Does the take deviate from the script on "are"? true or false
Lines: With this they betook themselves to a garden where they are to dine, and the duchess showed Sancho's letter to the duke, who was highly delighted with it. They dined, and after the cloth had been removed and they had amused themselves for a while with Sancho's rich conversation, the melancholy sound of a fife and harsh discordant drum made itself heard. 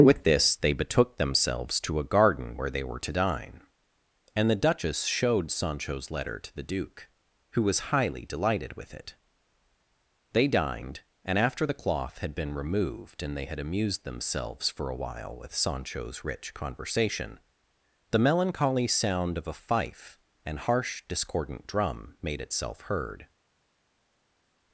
true